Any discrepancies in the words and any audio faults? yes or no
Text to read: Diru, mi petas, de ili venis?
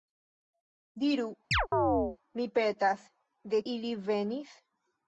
yes